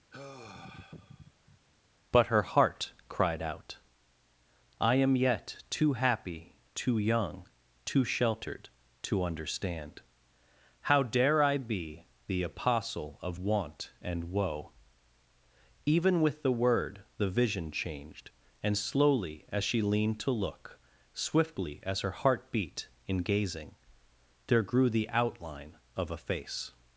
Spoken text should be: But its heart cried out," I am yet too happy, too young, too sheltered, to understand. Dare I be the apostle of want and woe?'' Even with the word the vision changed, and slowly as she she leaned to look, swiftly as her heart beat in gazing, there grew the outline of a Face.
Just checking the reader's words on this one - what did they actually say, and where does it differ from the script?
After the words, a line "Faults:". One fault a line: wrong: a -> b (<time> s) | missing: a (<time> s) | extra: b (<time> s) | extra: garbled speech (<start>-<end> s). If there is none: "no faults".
But her heart cried out," I am yet too happy, too young, too sheltered, to understand. How dare I be the apostle of want and woe?'' Even with the word the vision changed, and slowly as she leaned to look, swiftly as her heart beat in gazing, there grew the outline of a Face.
Faults:
wrong: its -> her (2.3 s)
extra: How (10.8 s)
missing: she (19.8 s)